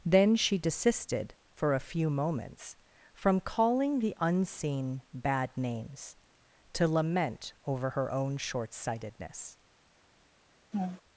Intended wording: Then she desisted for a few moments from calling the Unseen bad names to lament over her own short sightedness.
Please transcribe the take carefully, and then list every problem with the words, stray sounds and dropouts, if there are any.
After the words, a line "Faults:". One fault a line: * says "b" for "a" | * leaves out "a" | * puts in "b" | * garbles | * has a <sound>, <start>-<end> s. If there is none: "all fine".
Then she desisted for a few moments from calling the Unseen bad names to lament over her own short sightedness.
Faults:
* has a laugh, 10.7-11.0 s